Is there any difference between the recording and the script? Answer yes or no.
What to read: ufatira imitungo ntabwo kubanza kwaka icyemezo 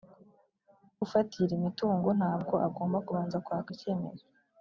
yes